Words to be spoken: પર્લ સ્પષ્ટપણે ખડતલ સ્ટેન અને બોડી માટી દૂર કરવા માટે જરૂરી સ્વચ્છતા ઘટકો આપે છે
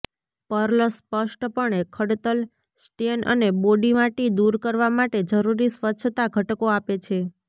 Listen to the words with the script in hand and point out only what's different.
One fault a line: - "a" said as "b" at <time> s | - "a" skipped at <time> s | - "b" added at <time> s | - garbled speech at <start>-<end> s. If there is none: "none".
none